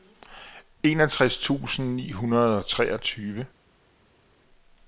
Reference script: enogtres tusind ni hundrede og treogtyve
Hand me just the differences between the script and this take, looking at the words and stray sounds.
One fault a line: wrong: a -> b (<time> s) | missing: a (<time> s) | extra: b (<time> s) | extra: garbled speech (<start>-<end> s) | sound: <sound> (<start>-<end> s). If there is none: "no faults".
no faults